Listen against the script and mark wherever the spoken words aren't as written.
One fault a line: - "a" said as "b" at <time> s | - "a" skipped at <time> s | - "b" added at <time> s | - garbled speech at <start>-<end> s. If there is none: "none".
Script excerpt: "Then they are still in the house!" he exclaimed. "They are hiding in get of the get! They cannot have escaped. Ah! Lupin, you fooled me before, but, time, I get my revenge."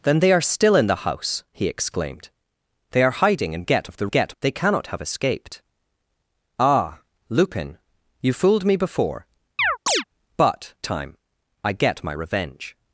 none